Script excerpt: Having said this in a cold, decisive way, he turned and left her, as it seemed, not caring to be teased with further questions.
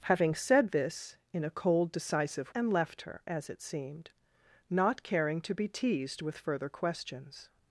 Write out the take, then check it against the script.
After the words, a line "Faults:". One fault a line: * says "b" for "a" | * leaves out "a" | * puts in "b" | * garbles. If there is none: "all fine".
Having said this in a cold, decisive and left her, as it seemed, not caring to be teased with further questions.
Faults:
* leaves out "way he turned"